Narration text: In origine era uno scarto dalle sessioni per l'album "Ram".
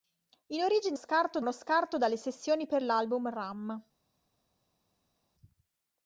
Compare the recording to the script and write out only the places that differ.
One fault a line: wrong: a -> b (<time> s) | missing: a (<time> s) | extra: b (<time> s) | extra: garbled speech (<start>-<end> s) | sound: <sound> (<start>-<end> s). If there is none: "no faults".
wrong: era -> scarto (0.9 s)